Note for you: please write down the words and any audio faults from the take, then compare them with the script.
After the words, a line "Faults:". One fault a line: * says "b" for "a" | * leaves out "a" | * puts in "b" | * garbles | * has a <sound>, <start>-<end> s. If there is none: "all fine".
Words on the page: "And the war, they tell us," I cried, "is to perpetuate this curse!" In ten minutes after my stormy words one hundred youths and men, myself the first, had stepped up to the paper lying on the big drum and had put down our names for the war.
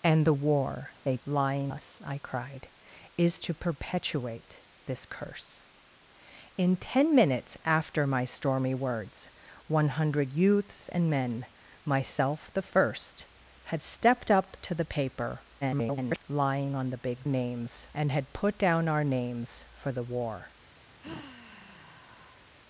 "And the war, they lying us," I cried, "is to perpetuate this curse!" In ten minutes after my stormy words one hundred youths and men, myself the first, had stepped up to the paper [garbled] lying on the big names and had put down our names for the war.
Faults:
* says "lying" for "tell"
* garbles
* says "names" for "drum"
* has a sigh, 21.0-22.6 s